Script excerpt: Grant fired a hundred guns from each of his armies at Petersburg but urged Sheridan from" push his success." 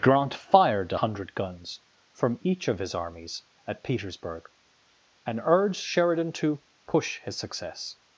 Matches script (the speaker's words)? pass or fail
fail